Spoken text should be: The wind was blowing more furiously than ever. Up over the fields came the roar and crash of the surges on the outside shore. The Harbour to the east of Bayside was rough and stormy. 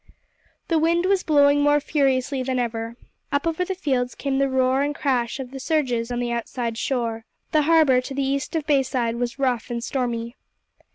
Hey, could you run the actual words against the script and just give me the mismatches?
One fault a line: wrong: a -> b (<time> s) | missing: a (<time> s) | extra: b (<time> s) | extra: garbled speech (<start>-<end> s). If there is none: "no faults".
no faults